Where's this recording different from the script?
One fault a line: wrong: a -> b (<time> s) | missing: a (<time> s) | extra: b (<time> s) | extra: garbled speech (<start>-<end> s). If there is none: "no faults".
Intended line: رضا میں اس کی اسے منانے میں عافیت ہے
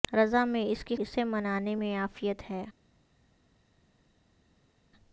no faults